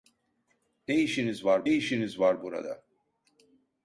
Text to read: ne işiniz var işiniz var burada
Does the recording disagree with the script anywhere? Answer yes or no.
no